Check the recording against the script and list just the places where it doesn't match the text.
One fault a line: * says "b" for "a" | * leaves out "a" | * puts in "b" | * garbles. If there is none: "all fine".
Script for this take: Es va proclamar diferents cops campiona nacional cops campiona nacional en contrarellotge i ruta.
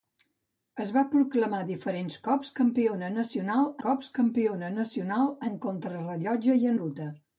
all fine